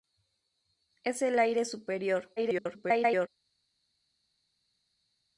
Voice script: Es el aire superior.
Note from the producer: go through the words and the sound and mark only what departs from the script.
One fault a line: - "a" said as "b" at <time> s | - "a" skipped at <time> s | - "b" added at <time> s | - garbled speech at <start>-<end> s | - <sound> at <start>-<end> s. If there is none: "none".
- garbled speech at 2.4-3.3 s